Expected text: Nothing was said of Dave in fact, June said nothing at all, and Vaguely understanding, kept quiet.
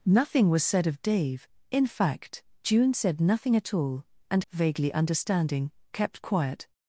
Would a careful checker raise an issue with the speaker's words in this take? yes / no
no